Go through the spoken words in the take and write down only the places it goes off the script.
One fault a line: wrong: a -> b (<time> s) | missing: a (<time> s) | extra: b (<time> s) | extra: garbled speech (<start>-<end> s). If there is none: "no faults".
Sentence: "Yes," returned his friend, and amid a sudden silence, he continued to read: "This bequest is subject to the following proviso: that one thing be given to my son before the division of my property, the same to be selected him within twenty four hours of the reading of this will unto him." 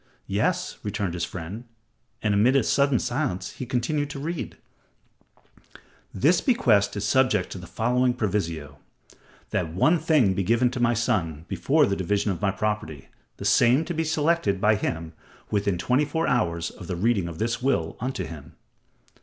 extra: by (14.6 s)